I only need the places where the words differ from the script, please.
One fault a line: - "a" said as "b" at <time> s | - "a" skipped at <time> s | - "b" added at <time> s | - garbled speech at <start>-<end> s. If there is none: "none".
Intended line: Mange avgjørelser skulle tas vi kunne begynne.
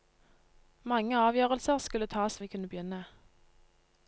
none